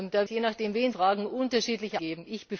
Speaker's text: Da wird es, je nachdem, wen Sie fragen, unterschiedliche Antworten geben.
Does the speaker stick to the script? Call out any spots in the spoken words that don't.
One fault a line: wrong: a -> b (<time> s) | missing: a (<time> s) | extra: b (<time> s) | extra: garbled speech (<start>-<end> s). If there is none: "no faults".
missing: wird es (0.2 s)
missing: Sie (0.9 s)
missing: Antworten (2.0 s)